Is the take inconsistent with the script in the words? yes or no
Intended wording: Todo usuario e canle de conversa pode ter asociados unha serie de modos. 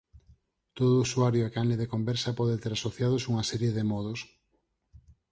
no